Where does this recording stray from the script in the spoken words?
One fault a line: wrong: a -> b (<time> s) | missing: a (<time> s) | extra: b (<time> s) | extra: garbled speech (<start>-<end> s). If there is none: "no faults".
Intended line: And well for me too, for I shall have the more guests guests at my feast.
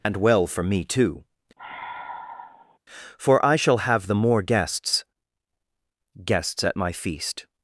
no faults